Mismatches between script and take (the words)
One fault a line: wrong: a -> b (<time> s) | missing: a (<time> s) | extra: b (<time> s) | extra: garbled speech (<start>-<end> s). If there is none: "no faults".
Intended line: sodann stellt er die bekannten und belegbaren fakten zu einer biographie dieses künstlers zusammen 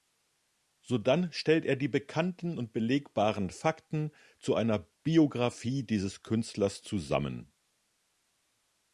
no faults